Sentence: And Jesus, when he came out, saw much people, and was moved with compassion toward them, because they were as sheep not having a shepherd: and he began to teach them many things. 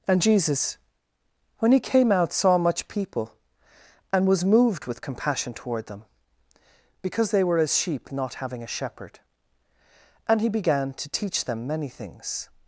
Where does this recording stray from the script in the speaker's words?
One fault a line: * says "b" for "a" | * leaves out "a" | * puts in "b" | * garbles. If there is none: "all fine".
all fine